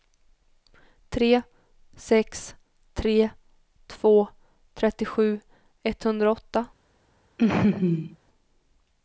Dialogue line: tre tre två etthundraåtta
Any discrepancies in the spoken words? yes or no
yes